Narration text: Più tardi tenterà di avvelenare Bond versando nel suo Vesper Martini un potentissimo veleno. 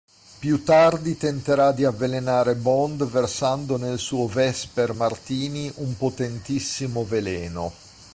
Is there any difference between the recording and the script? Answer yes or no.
no